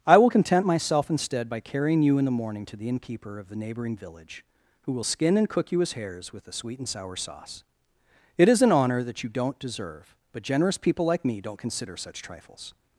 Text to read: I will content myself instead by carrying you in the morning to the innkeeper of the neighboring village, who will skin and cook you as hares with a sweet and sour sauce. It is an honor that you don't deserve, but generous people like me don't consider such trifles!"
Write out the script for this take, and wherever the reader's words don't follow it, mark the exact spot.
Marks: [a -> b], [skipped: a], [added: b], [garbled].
I will content myself instead by carrying you in the morning to the innkeeper of the neighboring village, who will skin and cook you as hares with a sweet and sour sauce. It is an honor that you don't deserve, but generous people like me don't consider such trifles!"